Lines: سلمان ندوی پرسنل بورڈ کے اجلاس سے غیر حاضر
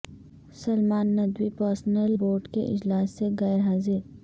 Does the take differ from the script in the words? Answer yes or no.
no